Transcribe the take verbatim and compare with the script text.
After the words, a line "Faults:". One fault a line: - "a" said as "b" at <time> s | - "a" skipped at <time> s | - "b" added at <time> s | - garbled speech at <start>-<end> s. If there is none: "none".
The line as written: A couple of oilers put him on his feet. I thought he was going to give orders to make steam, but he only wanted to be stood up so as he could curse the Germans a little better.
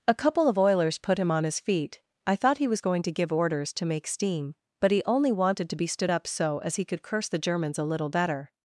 A couple of oilers put him on his feet. I thought he was going to give orders to make steam, but he only wanted to be stood up so as he could curse the Germans a little better.
Faults:
none